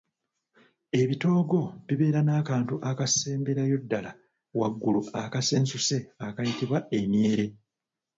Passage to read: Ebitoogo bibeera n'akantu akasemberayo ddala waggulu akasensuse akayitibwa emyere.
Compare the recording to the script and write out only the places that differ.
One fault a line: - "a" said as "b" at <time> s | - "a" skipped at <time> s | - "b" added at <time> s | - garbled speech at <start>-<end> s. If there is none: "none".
none